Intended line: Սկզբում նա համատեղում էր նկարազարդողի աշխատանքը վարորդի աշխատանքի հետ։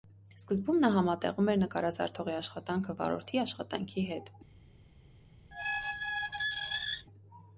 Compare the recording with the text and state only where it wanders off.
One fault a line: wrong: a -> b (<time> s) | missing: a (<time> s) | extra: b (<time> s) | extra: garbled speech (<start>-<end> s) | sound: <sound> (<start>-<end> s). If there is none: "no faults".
sound: squeak (5.5-7.1 s)